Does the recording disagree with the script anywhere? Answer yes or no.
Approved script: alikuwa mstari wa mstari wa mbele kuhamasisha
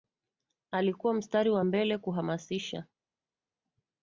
yes